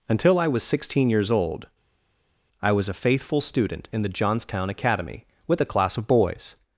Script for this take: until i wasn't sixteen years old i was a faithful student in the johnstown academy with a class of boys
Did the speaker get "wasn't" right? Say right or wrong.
wrong